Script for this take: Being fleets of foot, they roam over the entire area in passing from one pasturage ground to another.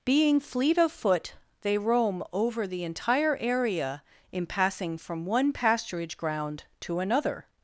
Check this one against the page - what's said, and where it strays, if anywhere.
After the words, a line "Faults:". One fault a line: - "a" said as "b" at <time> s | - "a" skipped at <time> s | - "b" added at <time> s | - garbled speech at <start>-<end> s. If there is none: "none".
Being fleet of foot, they roam over the entire area in passing from one pasturage ground to another.
Faults:
- "fleets" said as "fleet" at 0.4 s